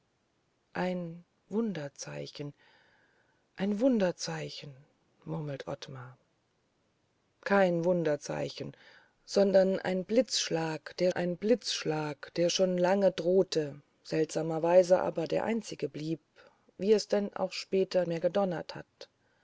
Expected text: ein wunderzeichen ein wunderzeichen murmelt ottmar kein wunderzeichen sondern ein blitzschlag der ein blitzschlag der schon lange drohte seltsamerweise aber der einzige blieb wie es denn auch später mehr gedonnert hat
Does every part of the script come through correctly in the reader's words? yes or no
yes